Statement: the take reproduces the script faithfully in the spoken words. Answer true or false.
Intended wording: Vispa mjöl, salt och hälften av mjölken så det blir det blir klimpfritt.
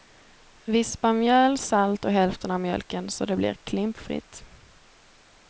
false